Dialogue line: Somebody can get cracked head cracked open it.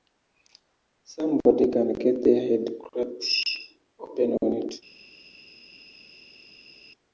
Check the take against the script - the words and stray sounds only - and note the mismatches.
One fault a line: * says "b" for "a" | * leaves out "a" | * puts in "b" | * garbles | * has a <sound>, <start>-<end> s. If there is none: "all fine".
* says "their" for "cracked"
* puts in "on"